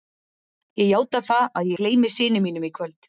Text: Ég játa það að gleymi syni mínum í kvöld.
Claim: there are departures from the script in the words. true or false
false